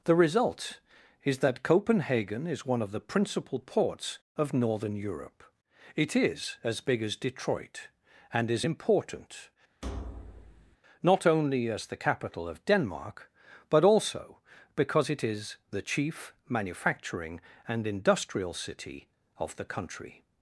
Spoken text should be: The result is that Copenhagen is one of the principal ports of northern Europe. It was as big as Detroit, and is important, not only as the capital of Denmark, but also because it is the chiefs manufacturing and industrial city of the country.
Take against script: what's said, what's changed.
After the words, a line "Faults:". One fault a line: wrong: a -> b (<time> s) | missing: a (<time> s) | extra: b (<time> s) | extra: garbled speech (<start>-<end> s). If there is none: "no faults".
The result is that Copenhagen is one of the principal ports of northern Europe. It is as big as Detroit, and is important, not only as the capital of Denmark, but also because it is the chief manufacturing and industrial city of the country.
Faults:
wrong: was -> is (6.1 s)
wrong: chiefs -> chief (15.8 s)